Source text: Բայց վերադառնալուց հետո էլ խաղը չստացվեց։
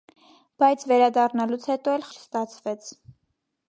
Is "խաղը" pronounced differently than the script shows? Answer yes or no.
yes